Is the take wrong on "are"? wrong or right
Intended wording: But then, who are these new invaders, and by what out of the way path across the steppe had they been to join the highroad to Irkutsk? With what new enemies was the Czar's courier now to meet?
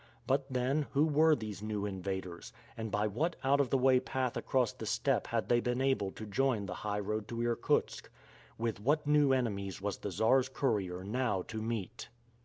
wrong